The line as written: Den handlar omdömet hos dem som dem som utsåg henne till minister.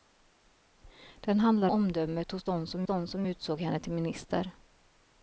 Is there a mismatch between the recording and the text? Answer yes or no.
no